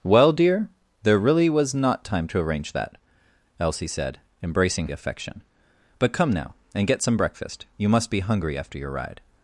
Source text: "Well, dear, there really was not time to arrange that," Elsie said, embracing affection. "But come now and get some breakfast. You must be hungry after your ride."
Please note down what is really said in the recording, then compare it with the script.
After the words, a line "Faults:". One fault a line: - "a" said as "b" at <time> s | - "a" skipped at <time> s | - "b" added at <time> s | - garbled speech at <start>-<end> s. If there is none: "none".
"Well, dear, there really was not time to arrange that," Elsie said, embracing affection. "But come now and get some breakfast. You must be hungry after your ride."
Faults:
none